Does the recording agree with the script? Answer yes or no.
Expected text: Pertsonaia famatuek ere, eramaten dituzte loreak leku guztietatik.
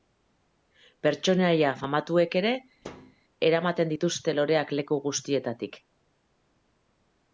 yes